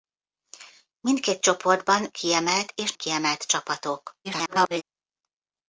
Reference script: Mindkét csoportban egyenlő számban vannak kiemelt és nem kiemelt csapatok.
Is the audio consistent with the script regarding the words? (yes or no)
no